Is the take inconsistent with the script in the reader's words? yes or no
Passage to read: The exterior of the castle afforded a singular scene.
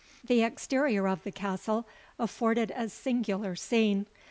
no